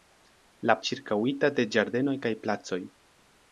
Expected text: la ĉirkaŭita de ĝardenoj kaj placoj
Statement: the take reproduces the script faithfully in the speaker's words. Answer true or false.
true